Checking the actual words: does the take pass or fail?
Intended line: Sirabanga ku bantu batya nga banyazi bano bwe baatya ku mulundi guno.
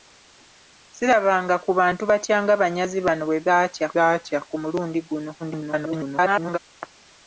fail